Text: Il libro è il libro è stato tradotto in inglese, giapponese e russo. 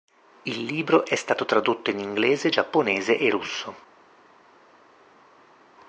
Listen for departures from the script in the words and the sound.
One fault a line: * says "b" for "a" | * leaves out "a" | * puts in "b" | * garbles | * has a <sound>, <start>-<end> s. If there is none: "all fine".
* leaves out "il libro è"